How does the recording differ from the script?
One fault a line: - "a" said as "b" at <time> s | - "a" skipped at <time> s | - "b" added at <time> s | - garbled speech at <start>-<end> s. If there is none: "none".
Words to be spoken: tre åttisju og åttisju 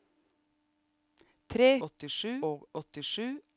none